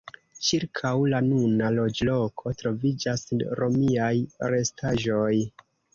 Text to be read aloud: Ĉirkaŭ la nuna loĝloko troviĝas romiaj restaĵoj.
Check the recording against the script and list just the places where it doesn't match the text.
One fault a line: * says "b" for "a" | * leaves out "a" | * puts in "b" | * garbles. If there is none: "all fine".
all fine